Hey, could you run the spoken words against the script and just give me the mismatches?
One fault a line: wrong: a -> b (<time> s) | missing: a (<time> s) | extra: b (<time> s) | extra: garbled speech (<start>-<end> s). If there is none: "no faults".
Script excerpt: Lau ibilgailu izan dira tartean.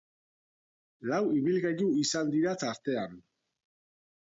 no faults